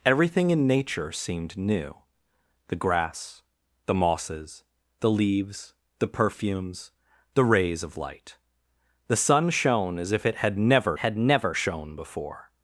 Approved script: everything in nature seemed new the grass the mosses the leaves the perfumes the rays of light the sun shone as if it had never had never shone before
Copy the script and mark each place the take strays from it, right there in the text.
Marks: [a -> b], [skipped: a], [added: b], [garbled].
everything in nature seemed new the grass the mosses the leaves the perfumes the rays of light the sun shone as if it had never had never shone before